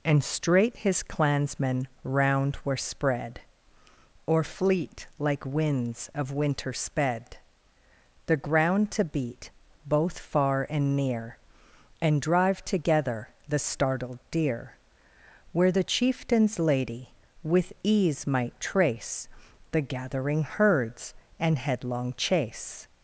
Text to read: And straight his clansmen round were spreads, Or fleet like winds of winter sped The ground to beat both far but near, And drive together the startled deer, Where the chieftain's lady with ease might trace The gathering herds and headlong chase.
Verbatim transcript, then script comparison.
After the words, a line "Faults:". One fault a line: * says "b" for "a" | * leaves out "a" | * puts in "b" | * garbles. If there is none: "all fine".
And straight his clansmen round were spread, Or fleet like winds of winter sped The ground to beat both far and near, And drive together the startled deer, Where the chieftain's lady with ease might trace The gathering herds and headlong chase.
Faults:
* says "spread" for "spreads"
* says "and" for "but"